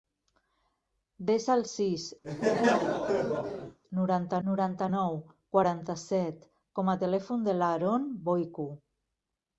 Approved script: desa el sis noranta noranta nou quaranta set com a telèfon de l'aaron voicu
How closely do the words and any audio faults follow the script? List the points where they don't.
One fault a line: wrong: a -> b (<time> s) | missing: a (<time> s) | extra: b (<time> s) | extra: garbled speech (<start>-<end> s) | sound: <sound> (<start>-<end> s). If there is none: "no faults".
sound: laugh (2.2-3.8 s)